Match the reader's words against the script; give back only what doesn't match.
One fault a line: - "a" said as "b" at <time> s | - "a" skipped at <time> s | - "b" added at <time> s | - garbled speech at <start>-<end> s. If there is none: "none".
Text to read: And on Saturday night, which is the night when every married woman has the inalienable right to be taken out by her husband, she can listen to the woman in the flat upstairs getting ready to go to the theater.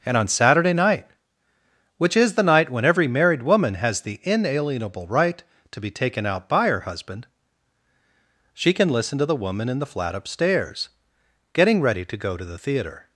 none